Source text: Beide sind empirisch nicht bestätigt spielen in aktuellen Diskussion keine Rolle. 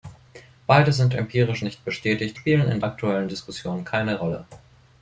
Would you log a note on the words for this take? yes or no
no